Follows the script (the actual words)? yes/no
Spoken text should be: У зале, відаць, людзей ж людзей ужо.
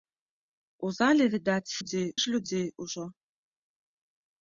yes